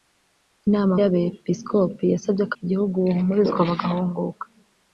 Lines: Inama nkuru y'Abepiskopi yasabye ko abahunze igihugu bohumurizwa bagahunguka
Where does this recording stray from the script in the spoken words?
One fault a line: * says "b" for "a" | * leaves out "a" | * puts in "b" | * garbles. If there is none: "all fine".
* leaves out "nkuru"
* leaves out "abahunze"